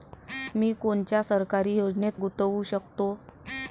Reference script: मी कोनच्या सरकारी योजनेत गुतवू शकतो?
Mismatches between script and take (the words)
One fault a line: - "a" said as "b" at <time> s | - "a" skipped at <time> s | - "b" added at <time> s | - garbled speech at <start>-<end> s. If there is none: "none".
none